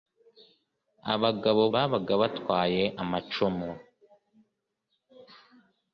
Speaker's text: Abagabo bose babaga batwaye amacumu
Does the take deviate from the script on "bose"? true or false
true